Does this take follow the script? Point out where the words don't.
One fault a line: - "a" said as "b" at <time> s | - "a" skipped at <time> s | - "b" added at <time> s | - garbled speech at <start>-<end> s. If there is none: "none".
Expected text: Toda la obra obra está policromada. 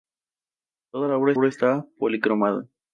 none